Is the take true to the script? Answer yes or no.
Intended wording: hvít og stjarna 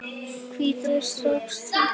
yes